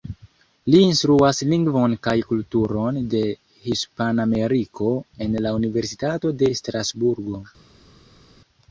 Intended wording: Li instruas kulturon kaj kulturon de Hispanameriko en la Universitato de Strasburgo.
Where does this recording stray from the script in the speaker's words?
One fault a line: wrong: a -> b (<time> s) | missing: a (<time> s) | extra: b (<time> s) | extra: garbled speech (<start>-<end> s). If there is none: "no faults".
wrong: kulturon -> lingvon (1.5 s)